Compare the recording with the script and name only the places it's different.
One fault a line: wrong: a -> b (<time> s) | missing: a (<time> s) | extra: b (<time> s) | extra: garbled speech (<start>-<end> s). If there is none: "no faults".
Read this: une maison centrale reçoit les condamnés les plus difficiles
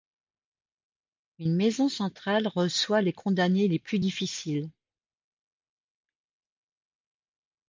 no faults